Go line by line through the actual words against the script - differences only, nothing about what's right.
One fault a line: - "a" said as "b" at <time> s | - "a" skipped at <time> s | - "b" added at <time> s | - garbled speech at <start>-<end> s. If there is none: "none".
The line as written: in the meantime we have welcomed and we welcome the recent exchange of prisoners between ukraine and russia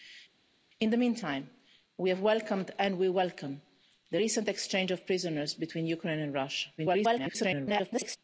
- garbled speech at 6.8-8.2 s